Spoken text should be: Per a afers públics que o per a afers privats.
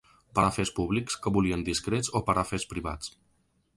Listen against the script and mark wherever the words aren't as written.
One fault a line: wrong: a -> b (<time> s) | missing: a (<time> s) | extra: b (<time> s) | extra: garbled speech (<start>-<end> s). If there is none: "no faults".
extra: volien discrets (1.4 s)